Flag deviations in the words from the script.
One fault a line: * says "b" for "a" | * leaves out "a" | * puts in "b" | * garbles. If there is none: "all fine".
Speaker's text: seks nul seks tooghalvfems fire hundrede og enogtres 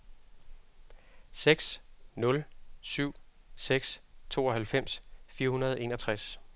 * puts in "syv"